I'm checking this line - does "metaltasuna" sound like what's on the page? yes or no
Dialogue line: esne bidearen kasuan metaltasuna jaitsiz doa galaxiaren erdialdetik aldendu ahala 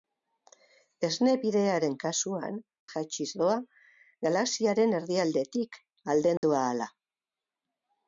no